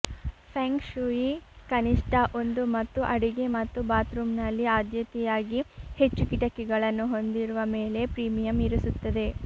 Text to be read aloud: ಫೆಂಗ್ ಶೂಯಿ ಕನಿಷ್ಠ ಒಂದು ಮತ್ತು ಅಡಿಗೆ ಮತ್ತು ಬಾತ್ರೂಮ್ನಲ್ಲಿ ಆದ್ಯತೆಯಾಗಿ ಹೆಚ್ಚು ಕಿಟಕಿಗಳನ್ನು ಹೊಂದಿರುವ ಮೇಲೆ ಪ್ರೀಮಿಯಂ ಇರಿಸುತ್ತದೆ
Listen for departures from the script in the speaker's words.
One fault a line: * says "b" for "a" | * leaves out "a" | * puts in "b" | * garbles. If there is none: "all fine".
all fine